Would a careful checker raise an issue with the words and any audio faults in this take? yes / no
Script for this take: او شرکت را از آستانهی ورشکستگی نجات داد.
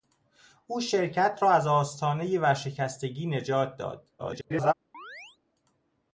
yes